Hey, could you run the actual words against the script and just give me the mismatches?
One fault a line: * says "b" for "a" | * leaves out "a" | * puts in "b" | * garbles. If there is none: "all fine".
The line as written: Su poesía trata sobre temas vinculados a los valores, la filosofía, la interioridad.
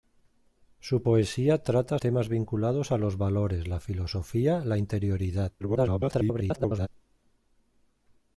* leaves out "sobre"
* garbles